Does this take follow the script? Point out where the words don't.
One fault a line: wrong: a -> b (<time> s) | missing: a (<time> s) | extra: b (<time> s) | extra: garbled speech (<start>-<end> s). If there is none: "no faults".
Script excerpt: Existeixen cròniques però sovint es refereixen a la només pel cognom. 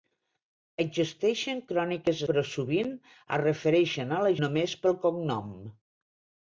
no faults